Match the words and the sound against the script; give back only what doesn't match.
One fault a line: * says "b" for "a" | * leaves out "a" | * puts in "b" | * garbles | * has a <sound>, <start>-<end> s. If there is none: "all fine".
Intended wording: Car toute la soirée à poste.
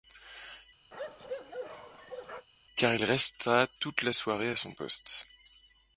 * has a bark, 0.9-2.5 s
* puts in "il resta"
* puts in "son"